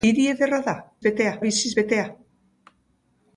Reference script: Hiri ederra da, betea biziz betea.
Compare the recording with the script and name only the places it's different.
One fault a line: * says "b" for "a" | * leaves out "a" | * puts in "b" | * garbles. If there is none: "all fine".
all fine